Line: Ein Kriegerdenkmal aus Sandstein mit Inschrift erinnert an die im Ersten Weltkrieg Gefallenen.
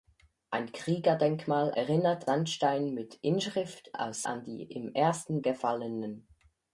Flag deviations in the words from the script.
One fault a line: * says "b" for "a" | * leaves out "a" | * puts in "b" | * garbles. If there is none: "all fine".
* says "erinnert" for "aus"
* says "aus" for "erinnert"
* leaves out "Weltkrieg"